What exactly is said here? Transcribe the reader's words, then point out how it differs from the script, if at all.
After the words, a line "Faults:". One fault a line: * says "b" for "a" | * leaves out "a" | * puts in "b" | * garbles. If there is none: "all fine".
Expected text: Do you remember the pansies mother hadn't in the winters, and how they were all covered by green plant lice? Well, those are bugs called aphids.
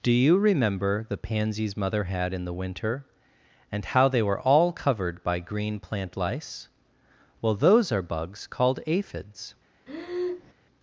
Do you remember the pansies mother had in the winter, and how they were all covered by green plant lice? Well, those are bugs called aphids.
Faults:
* says "had" for "hadn't"
* says "winter" for "winters"